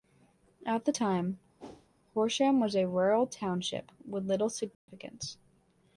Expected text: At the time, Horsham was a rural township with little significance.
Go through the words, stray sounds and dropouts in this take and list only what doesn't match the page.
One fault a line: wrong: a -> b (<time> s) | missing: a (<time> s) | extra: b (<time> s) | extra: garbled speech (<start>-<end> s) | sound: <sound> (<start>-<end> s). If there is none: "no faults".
sound: whoosh (1.6-1.9 s)
sound: dropout (4.7-4.9 s)